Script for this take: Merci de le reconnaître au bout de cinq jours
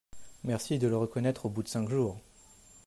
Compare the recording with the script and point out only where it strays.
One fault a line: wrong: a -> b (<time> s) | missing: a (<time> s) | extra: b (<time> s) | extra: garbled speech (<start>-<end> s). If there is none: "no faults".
no faults